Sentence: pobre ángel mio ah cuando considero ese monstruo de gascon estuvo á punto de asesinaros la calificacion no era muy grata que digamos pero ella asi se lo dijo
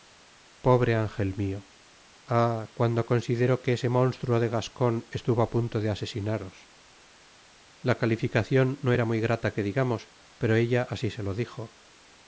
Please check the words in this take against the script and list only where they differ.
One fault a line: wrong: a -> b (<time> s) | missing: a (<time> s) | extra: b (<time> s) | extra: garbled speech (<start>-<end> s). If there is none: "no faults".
extra: que (3.6 s)